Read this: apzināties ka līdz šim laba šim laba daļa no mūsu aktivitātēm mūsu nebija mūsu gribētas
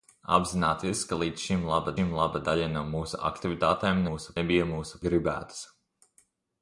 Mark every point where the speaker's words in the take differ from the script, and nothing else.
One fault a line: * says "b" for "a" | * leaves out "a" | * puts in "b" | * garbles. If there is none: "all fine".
all fine